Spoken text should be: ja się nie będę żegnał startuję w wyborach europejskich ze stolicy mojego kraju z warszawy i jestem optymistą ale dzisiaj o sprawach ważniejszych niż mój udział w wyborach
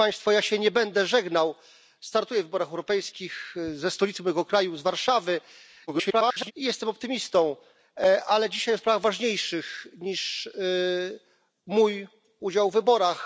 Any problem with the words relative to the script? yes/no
yes